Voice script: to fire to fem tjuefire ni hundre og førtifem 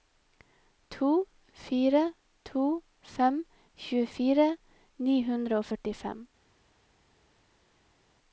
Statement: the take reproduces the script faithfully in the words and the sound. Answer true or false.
true